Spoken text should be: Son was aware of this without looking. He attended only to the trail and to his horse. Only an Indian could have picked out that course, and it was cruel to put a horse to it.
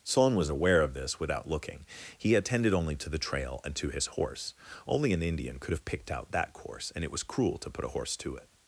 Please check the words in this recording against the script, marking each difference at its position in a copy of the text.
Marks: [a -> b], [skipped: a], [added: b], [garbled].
Son was aware of this without looking. He attended only to the trail and to his horse. Only an Indian could have picked out that course, and it was cruel to put a horse to it.